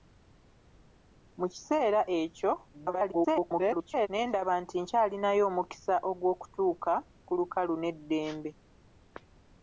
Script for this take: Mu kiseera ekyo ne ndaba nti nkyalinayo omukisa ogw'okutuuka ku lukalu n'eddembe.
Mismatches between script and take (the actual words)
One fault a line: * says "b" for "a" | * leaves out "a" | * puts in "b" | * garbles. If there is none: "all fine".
* garbles